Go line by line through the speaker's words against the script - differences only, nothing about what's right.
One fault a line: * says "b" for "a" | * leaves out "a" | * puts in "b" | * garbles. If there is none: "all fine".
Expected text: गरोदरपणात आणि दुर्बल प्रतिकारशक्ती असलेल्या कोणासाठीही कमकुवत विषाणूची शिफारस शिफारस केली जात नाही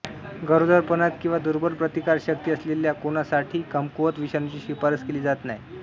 * says "किंवा" for "आणि"
* leaves out "शिफारस"